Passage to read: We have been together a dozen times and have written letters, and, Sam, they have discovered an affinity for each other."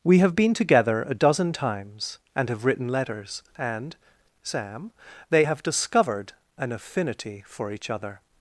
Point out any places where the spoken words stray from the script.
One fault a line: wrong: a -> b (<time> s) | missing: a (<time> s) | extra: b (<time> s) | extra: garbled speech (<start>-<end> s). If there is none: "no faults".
no faults